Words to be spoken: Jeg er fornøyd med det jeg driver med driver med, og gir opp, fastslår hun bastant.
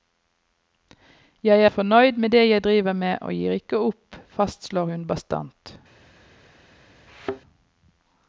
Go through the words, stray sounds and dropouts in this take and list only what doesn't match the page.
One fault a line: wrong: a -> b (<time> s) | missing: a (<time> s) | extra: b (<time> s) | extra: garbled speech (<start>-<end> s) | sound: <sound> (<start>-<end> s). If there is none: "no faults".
missing: driver med (3.2 s)
extra: ikke (3.6 s)
sound: thud (7.1-7.4 s)